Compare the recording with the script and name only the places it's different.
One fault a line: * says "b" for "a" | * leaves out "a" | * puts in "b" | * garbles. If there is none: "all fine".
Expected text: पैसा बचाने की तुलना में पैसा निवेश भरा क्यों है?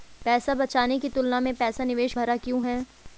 all fine